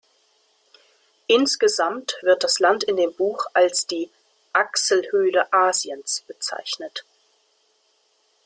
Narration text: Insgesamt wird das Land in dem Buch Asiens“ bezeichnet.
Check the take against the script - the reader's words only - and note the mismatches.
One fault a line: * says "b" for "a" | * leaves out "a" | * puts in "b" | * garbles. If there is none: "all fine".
* puts in "als die Achselhöhle"